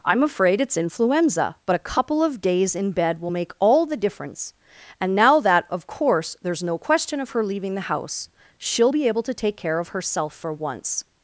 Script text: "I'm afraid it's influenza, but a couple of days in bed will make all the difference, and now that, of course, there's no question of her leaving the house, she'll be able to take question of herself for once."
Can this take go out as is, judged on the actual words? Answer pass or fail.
fail